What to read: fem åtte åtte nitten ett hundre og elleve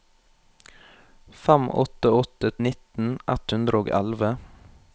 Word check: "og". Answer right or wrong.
right